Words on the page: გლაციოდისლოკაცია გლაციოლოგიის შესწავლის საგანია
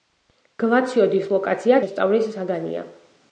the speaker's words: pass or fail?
fail